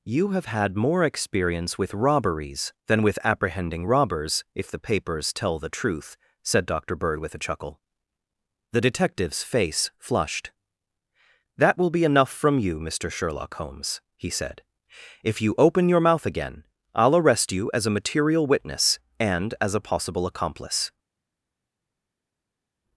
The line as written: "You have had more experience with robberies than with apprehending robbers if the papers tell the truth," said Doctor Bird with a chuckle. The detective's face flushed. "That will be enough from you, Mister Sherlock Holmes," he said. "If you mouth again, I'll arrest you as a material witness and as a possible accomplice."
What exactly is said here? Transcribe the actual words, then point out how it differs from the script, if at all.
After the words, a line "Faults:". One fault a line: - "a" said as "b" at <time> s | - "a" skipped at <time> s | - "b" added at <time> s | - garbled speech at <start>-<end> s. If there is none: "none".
"You have had more experience with robberies than with apprehending robbers if the papers tell the truth," said Doctor Bird with a chuckle. The detective's face flushed. "That will be enough from you, Mister Sherlock Holmes," he said. "If you open your mouth again, I'll arrest you as a material witness and as a possible accomplice."
Faults:
- "open your" added at 15.6 s